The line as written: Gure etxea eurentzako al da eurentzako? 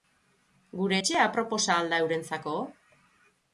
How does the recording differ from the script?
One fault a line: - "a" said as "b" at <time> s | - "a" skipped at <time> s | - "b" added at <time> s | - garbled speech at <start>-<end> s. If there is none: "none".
- "eurentzako" said as "aproposa" at 1.3 s